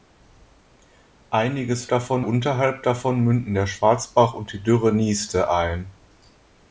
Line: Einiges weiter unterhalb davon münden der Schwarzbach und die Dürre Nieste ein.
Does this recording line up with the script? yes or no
no